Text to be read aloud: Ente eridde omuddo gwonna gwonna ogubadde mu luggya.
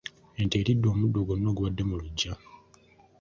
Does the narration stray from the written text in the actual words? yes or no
yes